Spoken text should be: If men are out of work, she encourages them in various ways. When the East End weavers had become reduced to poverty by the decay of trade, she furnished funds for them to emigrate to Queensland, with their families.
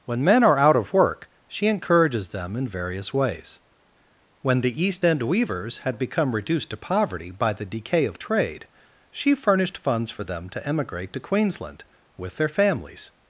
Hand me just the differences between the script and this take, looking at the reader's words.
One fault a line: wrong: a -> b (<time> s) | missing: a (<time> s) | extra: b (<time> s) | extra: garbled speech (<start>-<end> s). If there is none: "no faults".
wrong: If -> When (0.1 s)